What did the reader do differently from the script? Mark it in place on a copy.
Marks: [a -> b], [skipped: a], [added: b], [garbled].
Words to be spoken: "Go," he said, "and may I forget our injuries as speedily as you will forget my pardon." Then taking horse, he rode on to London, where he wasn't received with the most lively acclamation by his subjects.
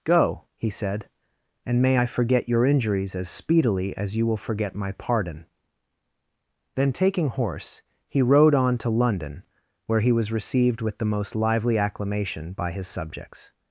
"Go," he said, "and may I forget [our -> your] injuries as speedily as you will forget my pardon." Then taking horse, he rode on to London, where he [wasn't -> was] received with the most lively acclamation by his subjects.